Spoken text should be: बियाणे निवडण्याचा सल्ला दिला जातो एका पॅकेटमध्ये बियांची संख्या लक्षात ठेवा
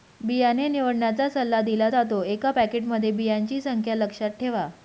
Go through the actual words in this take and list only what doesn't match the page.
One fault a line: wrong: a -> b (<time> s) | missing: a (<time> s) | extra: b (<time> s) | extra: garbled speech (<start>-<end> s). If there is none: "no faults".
no faults